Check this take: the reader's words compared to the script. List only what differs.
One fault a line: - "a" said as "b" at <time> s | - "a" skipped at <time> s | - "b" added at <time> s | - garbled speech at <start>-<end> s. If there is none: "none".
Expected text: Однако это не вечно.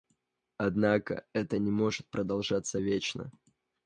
- "может продолжаться" added at 1.7 s